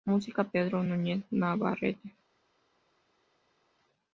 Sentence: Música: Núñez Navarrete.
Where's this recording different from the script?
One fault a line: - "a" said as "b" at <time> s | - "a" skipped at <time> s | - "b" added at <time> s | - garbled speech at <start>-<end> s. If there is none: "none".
- "Pedro" added at 0.5 s